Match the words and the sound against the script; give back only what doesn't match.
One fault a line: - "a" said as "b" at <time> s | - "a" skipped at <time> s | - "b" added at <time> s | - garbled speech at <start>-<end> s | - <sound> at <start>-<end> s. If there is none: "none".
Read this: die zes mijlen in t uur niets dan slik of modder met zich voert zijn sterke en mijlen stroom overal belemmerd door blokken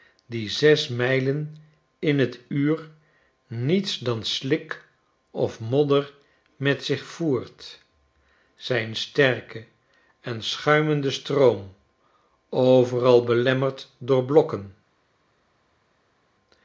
- "mijlen" said as "schuimende" at 10.4 s